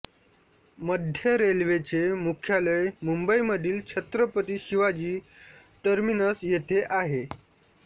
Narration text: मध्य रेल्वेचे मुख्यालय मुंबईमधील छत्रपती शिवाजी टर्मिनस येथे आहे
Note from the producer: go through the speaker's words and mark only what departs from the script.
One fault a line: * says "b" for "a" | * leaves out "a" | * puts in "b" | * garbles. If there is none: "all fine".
all fine